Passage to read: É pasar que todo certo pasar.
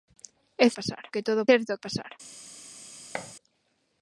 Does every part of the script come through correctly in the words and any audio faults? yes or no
no